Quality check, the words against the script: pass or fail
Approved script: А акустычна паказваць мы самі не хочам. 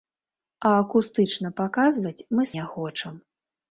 fail